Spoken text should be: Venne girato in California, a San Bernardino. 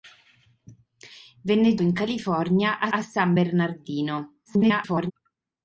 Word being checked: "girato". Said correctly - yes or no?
no